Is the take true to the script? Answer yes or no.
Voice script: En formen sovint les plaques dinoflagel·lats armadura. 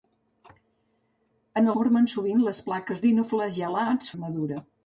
yes